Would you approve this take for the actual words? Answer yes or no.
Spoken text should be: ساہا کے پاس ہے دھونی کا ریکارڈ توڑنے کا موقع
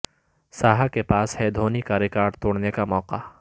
yes